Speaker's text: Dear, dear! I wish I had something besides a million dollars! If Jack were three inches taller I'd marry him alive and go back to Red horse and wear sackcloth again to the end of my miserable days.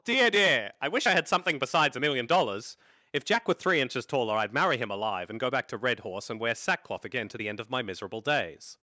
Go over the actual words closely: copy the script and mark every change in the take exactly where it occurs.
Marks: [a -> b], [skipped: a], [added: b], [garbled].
Dear, dear! I wish I had something besides a million dollars! If Jack were three inches taller I'd marry him alive and go back to Red horse and wear sackcloth again to the end of my miserable days.